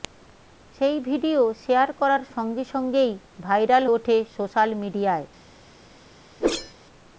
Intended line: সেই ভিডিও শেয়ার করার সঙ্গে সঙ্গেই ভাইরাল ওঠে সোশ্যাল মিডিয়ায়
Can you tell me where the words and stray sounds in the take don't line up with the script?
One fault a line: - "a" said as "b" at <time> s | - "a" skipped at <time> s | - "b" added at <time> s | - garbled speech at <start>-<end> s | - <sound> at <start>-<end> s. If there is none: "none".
- whoosh at 6.4-6.7 s